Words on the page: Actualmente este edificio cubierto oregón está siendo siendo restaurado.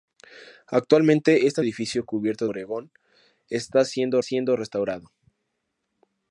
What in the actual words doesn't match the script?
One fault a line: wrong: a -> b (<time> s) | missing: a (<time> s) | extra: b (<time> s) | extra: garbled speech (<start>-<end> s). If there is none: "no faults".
no faults